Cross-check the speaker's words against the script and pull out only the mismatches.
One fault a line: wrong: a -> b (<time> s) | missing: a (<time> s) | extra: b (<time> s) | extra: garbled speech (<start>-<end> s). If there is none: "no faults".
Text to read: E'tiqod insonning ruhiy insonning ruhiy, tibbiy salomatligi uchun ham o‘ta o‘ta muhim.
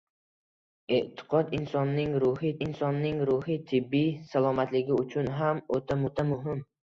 no faults